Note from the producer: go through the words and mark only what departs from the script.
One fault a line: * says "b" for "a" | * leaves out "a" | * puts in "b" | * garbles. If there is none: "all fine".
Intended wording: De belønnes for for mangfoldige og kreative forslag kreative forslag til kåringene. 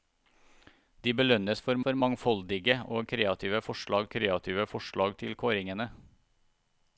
all fine